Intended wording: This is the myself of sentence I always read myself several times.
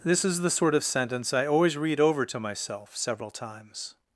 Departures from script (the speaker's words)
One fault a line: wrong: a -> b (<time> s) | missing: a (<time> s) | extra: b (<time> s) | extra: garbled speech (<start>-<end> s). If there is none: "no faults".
wrong: myself -> sort (0.5 s)
extra: over to (2.0 s)